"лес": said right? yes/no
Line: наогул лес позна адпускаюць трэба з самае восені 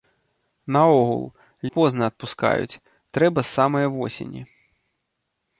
no